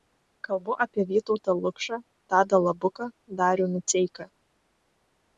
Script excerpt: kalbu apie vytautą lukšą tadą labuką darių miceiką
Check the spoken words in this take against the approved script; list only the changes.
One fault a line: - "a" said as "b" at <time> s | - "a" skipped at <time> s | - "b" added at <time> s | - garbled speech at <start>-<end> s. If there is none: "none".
none